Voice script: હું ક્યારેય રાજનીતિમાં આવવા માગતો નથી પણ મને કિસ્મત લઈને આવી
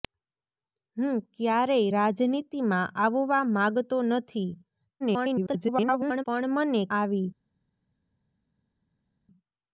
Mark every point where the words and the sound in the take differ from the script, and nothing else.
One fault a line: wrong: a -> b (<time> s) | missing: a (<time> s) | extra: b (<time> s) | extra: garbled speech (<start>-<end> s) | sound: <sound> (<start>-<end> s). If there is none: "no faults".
extra: garbled speech (5.0-6.2 s)
missing: કિસ્મત લઈને (6.8 s)